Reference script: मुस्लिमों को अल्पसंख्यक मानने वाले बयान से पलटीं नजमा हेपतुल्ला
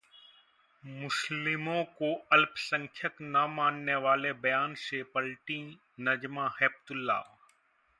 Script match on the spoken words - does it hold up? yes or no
no